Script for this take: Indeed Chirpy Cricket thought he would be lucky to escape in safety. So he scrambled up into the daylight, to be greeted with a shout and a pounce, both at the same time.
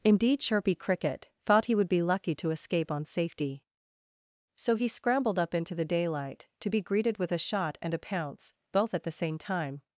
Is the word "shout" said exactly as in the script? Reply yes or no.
no